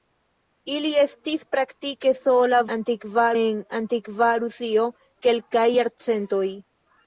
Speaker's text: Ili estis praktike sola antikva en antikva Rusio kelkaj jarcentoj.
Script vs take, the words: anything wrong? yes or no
no